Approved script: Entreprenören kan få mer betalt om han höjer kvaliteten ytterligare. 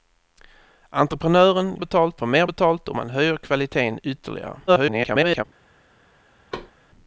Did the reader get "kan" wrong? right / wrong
wrong